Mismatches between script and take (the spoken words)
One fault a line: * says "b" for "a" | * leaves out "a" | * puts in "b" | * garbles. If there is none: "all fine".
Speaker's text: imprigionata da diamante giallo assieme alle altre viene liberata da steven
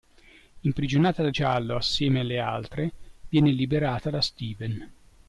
* leaves out "diamante"